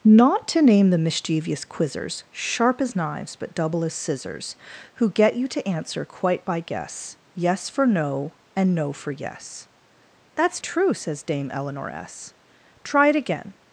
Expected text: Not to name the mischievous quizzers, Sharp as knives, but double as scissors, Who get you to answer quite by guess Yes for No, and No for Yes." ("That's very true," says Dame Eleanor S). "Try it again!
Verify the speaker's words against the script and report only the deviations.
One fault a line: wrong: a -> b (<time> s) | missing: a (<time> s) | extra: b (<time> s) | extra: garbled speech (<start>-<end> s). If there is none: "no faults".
missing: very (10.6 s)